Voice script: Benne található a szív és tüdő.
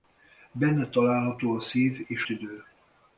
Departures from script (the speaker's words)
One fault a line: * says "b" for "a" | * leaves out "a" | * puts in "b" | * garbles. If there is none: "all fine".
all fine